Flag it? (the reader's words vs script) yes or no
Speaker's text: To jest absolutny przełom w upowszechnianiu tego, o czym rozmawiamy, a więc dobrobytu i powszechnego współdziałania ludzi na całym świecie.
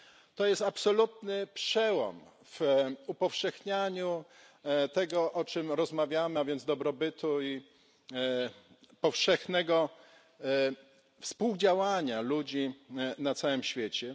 no